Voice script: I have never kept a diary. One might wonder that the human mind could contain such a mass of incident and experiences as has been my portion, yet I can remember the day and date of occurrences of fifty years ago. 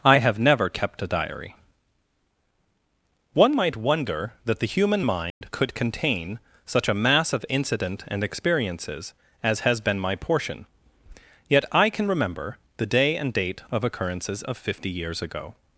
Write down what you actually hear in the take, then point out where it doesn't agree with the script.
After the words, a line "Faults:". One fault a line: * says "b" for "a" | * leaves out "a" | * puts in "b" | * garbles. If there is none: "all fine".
I have never kept a diary. One might wonder that the human mind could contain such a mass of incident and experiences as has been my portion, yet I can remember the day and date of occurrences of fifty years ago.
Faults:
all fine